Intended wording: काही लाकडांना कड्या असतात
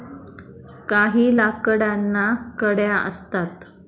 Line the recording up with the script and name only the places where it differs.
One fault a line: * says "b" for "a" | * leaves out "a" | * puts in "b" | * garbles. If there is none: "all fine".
all fine